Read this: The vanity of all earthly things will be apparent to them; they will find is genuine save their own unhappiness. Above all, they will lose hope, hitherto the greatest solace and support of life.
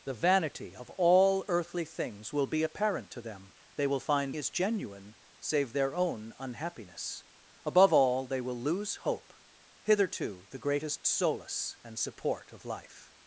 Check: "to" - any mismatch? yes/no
no